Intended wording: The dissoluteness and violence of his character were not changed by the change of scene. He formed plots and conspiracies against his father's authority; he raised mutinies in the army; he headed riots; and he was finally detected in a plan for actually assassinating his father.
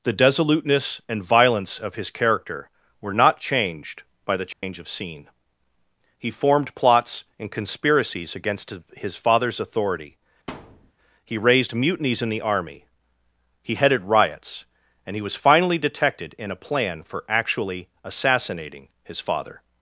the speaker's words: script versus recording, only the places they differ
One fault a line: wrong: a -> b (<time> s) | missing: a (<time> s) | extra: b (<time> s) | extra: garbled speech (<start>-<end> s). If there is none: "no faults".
no faults